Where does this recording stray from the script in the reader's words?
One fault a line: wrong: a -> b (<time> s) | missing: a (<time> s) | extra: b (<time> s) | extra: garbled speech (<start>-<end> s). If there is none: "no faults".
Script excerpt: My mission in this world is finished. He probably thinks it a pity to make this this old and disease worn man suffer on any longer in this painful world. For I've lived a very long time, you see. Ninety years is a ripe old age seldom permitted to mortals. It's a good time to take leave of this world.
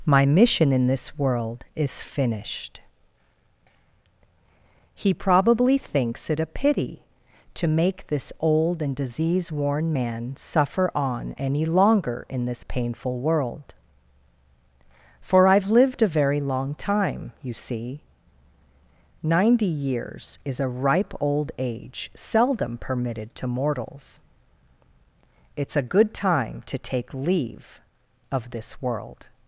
missing: this (8.3 s)